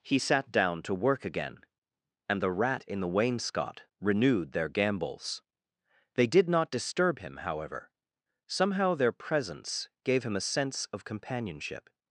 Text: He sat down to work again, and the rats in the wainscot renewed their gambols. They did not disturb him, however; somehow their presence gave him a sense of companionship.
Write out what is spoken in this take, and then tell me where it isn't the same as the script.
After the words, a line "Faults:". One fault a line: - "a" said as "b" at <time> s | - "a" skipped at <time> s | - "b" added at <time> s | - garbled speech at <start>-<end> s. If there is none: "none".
He sat down to work again, and the rat in the wainscot renewed their gambols. They did not disturb him, however; somehow their presence gave him a sense of companionship.
Faults:
- "rats" said as "rat" at 2.5 s